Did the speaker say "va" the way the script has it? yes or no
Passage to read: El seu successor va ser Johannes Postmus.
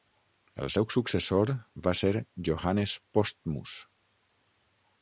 yes